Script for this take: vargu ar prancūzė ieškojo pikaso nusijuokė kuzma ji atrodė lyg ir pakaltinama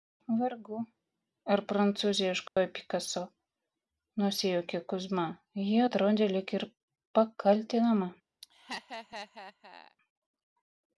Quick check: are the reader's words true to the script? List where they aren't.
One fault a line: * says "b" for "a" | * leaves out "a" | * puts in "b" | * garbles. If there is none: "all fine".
all fine